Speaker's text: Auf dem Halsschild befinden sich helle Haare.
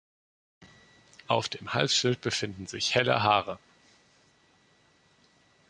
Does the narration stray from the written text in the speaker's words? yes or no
no